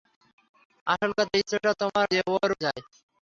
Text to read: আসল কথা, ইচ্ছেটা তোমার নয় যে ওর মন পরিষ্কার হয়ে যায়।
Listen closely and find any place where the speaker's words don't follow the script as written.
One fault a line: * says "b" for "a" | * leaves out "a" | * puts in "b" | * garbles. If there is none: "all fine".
* leaves out "নয়"
* leaves out "মন পরিষ্কার হয়ে"